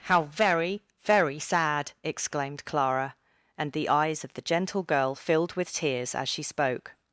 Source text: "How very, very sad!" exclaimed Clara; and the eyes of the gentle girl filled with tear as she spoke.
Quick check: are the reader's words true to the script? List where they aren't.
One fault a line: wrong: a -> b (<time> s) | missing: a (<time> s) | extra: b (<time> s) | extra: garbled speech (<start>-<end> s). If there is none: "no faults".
wrong: tear -> tears (5.7 s)